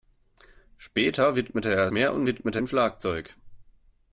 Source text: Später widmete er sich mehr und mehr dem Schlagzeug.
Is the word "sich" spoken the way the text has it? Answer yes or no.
no